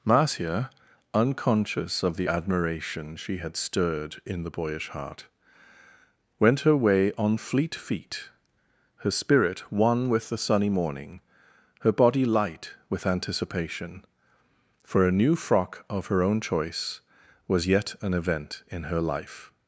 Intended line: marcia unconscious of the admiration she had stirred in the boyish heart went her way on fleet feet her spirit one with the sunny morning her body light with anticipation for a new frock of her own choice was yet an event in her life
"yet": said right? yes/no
yes